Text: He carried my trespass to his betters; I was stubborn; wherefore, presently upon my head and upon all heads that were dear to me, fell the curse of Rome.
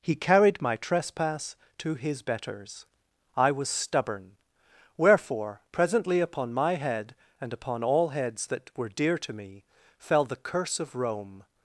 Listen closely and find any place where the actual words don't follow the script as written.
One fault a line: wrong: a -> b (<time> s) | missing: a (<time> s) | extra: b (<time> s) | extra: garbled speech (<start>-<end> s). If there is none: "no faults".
no faults